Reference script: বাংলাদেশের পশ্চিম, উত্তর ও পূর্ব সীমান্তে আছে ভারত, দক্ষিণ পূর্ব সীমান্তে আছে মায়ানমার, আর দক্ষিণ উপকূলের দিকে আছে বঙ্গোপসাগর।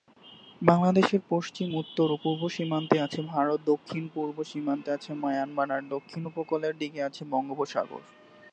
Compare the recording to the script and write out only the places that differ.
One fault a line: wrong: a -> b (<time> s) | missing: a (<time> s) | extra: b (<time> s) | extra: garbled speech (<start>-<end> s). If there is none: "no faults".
no faults